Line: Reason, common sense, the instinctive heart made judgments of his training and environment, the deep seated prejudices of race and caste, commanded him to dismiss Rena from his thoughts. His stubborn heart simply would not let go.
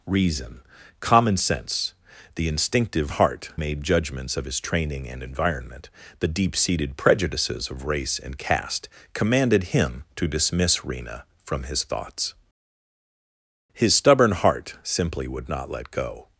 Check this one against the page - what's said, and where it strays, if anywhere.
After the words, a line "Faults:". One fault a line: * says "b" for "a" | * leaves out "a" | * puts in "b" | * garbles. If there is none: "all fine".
Reason, common sense, the instinctive heart made judgments of his training and environment, the deep seated prejudices of race and caste, commanded him to dismiss Rena from his thoughts. His stubborn heart simply would not let go.
Faults:
all fine